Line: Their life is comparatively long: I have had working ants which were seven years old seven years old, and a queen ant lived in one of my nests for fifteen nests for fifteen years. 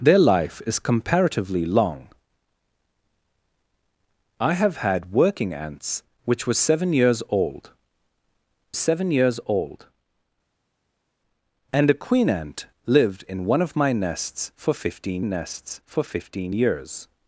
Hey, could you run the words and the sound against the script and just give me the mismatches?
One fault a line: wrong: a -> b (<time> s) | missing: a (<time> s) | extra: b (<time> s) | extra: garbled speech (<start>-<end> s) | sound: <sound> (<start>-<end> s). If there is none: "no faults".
no faults